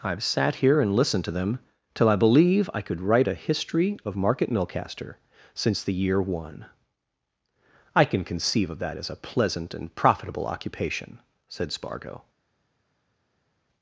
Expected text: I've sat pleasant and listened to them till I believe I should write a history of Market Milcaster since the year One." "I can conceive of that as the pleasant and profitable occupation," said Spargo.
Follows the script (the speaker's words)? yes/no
no